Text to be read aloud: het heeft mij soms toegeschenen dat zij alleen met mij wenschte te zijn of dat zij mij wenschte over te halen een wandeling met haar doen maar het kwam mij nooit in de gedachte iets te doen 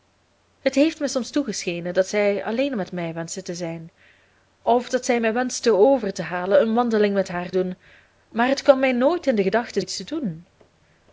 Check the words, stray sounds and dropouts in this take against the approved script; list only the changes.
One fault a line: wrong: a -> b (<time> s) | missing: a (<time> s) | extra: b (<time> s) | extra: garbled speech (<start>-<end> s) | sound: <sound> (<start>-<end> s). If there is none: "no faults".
no faults